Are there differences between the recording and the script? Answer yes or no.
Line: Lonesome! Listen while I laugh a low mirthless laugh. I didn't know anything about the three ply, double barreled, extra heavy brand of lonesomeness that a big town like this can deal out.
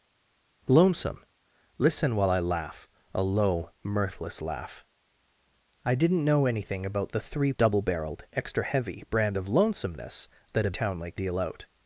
yes